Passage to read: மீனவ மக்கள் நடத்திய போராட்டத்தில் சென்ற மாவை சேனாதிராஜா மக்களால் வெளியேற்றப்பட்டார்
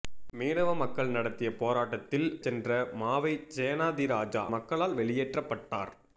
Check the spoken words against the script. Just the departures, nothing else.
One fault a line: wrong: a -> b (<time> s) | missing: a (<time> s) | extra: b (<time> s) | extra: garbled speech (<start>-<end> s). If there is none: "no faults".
no faults